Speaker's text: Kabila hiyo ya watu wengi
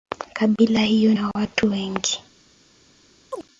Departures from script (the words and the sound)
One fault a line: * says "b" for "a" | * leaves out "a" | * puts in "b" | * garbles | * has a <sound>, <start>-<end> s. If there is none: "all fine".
* has a chirp, 3.3-3.5 s